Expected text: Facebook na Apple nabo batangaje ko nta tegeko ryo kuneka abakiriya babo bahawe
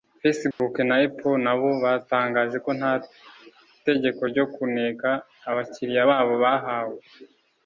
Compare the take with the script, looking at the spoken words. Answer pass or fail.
pass